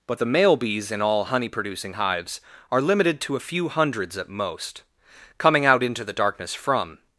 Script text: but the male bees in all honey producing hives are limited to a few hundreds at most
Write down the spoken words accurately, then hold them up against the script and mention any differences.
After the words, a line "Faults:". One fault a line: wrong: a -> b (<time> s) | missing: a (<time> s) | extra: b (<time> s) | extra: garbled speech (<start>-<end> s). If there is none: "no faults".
but the male bees in all honey producing hives are limited to a few hundreds at most coming out into the darkness from
Faults:
extra: coming out into the darkness from (5.4 s)